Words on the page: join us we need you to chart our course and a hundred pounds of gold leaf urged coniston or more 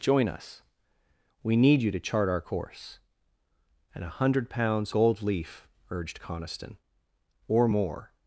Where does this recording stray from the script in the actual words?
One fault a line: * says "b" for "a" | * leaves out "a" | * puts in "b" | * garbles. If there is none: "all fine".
* leaves out "of"